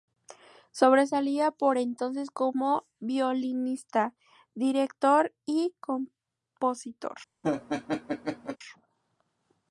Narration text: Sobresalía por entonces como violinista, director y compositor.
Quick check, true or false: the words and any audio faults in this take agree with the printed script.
false